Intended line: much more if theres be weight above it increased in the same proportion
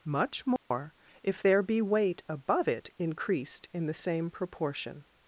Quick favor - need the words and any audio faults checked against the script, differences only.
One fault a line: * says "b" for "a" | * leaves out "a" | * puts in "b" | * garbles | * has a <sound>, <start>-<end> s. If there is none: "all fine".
* has a dropout, 0.6-0.7 s
* says "there" for "theres"